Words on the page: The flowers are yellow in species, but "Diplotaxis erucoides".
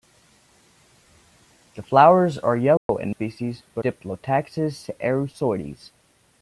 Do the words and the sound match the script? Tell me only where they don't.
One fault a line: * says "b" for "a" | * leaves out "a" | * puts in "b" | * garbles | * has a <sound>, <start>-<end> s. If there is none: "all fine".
* has a dropout, 2.8-2.9 s